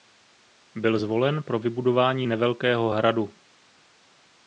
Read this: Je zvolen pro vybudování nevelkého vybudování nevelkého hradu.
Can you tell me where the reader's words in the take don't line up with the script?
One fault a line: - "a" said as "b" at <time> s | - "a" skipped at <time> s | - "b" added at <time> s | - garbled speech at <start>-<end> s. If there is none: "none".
- "Je" said as "Byl" at 0.8 s
- "vybudování nevelkého" skipped at 2.9 s